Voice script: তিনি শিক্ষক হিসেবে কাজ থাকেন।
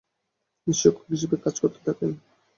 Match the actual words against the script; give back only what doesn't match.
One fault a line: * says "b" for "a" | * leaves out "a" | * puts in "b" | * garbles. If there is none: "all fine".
* puts in "করতে"